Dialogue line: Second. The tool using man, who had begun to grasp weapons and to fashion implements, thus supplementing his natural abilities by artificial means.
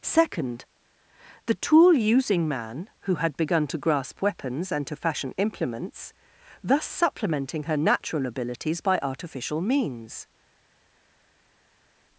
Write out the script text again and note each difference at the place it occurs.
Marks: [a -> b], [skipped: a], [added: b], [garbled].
Second. The tool using man, who had begun to grasp weapons and to fashion implements, thus supplementing [his -> her] natural abilities by artificial means.